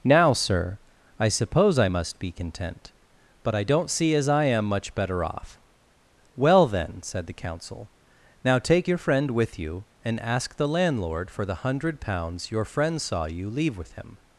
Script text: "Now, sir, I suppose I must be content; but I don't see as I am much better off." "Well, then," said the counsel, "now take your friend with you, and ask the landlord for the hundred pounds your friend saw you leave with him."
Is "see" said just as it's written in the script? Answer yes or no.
yes